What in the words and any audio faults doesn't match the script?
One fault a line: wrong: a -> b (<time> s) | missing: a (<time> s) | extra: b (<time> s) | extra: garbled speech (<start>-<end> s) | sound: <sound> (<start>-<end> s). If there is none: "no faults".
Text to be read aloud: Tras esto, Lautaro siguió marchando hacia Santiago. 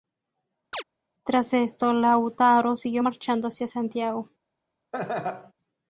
sound: chirp (0.7-0.8 s)
sound: laugh (4.9-5.5 s)